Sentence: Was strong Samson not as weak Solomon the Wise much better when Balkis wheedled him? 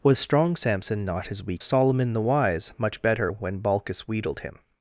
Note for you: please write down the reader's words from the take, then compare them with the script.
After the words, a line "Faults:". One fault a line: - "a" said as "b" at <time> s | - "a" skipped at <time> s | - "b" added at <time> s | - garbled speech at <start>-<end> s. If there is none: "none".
Was strong Samson not as weak Solomon the Wise much better when Balkis wheedled him?
Faults:
none